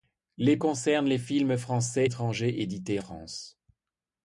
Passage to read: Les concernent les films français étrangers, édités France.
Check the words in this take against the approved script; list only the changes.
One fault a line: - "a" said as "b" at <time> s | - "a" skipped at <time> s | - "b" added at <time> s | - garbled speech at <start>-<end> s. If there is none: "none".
none